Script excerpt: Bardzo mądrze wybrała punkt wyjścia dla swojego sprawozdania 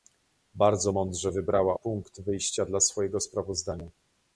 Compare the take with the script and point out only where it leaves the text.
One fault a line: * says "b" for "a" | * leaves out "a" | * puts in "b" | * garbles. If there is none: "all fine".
all fine